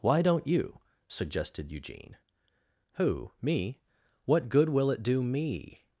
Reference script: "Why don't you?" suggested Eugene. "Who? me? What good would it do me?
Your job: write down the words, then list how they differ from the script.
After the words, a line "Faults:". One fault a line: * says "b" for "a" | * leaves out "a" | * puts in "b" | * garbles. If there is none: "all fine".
"Why don't you?" suggested Eugene. "Who? me? What good will it do me?
Faults:
* says "will" for "would"